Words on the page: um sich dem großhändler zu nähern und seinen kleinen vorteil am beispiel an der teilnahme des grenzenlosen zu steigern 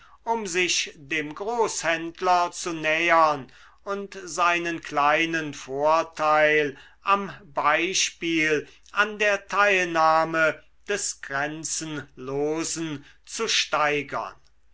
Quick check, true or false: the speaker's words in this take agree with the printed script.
true